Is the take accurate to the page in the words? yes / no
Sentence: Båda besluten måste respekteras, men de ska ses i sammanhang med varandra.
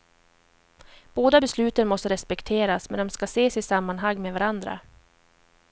yes